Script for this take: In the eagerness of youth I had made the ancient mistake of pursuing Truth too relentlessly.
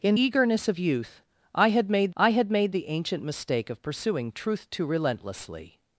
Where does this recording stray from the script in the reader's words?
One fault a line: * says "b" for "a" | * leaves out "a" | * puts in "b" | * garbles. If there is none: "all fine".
* leaves out "the"
* puts in "I had made"